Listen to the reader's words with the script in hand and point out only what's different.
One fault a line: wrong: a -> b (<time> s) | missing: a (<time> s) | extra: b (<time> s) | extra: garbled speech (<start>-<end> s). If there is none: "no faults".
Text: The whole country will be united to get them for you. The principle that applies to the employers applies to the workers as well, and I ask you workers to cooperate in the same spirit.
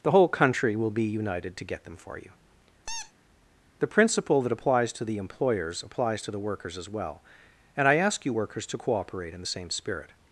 no faults